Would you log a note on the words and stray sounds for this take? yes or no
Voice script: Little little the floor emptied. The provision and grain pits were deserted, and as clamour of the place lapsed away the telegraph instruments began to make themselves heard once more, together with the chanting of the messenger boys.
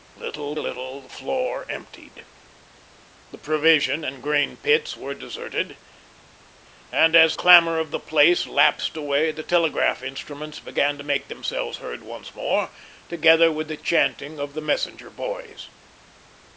no